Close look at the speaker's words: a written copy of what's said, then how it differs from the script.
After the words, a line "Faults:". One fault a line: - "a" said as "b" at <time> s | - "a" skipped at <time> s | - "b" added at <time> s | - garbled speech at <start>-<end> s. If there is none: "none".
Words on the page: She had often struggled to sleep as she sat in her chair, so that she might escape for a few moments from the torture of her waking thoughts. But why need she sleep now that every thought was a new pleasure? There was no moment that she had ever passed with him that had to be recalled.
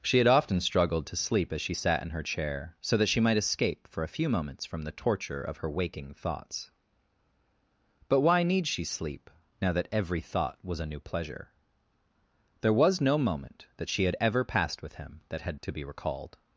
She had often struggled to sleep as she sat in her chair, so that she might escape for a few moments from the torture of her waking thoughts. But why need she sleep now that every thought was a new pleasure? There was no moment that she had ever passed with him that had to be recalled.
Faults:
none